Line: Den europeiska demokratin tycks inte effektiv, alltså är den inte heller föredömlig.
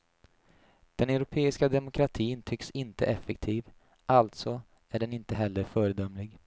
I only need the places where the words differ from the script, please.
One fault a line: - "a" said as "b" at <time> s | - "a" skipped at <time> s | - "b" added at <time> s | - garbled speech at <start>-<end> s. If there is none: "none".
none